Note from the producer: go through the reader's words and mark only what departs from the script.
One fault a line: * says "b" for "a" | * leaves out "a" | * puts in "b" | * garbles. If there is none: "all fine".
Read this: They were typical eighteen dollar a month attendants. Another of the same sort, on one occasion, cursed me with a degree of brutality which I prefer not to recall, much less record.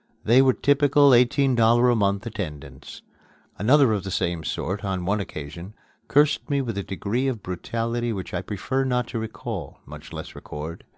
all fine